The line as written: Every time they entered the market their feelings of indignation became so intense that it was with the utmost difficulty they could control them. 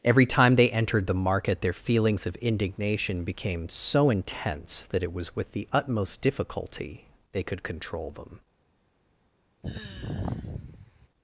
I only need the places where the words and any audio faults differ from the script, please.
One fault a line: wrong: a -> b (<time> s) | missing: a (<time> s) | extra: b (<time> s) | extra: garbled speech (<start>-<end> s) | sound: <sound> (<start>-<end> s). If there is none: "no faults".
sound: sigh (9.6-11.1 s)